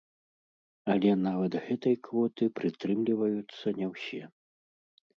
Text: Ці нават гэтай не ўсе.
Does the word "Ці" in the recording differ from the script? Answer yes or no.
yes